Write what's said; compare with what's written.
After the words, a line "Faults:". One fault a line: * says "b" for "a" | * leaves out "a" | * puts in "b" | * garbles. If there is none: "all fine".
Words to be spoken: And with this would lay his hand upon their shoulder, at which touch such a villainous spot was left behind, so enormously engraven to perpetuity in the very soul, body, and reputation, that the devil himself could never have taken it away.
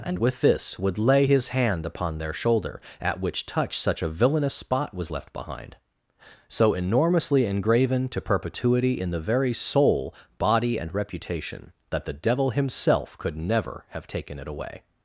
And with this would lay his hand upon their shoulder, at which touch such a villainous spot was left behind, so enormously engraven to perpetuity in the very soul, body, and reputation, that the devil himself could never have taken it away.
Faults:
all fine